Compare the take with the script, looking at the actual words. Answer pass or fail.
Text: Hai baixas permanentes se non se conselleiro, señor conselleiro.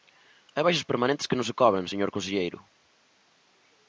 fail